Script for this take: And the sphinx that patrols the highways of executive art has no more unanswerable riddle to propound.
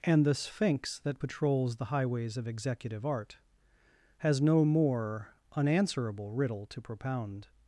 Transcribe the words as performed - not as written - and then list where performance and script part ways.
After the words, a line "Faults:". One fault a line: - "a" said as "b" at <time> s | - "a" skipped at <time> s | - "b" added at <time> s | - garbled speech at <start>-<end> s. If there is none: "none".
And the sphinx that patrols the highways of executive art has no more unanswerable riddle to propound.
Faults:
none